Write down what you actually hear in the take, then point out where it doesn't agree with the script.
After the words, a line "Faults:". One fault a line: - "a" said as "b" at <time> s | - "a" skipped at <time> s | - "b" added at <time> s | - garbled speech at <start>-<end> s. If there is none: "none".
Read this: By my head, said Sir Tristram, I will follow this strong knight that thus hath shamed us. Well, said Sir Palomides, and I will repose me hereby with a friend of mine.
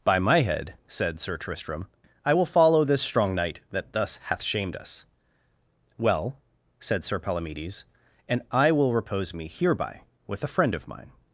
By my head, said Sir Tristram, I will follow this strong knight that thus hath shamed us. Well, said Sir Palomides, and I will repose me hereby with a friend of mine.
Faults:
none